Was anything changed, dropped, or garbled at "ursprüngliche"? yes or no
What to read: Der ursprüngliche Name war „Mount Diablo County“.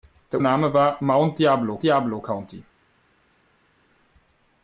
yes